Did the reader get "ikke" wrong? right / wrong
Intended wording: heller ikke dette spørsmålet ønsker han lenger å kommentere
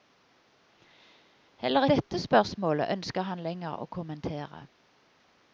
wrong